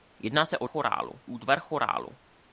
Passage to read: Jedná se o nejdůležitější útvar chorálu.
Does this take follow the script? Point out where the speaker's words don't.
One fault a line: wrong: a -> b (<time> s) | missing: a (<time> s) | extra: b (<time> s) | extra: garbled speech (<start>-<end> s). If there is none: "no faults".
wrong: nejdůležitější -> chorálu (0.6 s)